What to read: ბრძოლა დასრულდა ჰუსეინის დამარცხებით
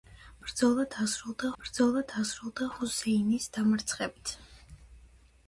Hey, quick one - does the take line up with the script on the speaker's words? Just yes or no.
no